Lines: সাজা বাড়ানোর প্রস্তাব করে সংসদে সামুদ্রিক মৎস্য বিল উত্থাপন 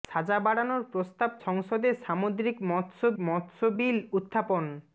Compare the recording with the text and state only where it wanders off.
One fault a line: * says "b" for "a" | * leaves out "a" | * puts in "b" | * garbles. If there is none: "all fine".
* leaves out "করে"
* puts in "মৎস্য"